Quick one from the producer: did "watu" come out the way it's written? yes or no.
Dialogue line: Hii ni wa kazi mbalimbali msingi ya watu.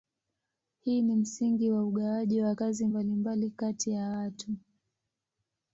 yes